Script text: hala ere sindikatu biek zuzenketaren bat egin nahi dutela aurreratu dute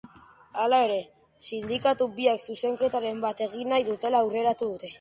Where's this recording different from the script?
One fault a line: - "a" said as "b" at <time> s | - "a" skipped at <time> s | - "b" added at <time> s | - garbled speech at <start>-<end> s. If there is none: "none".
none